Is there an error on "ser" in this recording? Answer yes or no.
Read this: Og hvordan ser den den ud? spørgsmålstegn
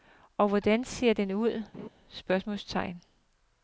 no